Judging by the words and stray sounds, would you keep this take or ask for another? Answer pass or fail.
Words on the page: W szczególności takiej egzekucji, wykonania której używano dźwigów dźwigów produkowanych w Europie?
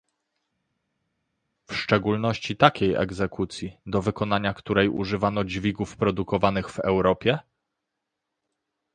fail